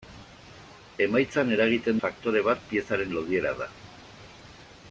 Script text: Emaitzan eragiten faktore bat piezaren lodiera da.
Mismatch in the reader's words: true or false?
false